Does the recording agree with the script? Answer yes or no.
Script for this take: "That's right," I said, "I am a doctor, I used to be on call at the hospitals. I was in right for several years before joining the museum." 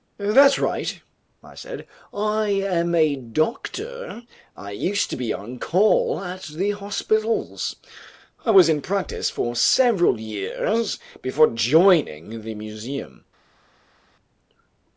no